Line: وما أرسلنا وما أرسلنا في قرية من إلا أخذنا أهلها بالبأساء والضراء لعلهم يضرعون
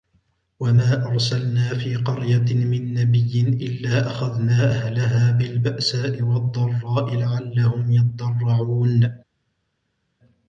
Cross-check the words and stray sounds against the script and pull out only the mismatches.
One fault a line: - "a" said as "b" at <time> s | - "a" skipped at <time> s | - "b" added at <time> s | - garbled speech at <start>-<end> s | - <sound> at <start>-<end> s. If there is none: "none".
- "وما أرسلنا" skipped at 1.7 s
- "نبي" added at 2.9 s